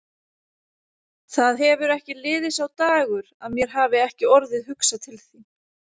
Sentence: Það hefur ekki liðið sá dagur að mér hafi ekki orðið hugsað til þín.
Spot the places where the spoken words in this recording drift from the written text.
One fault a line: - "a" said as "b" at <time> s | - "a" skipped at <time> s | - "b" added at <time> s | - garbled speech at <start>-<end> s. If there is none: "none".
none